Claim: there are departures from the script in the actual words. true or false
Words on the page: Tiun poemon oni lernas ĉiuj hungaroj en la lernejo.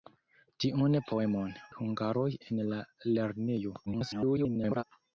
true